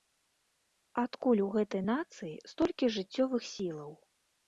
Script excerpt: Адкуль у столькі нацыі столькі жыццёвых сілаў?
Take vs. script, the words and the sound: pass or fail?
fail